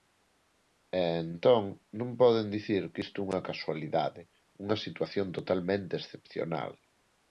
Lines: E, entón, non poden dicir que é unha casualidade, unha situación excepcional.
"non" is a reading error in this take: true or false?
false